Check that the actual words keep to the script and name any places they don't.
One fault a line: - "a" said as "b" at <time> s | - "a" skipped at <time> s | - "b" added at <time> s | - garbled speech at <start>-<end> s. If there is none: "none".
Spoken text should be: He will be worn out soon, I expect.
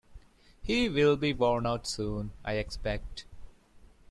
none